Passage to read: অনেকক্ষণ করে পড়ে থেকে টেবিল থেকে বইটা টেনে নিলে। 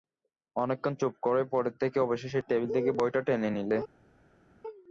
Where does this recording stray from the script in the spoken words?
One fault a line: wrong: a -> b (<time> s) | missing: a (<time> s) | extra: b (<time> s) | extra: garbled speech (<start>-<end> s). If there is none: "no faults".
extra: চুপ (1.0 s)
extra: অবশেষে (2.0 s)